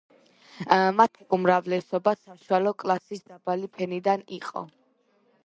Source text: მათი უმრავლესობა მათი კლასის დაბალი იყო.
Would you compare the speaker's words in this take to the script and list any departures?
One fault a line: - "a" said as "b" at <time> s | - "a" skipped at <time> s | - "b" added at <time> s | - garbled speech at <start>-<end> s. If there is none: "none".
- "მათი" said as "საშუალო" at 2.2 s
- "ფენიდან" added at 3.8 s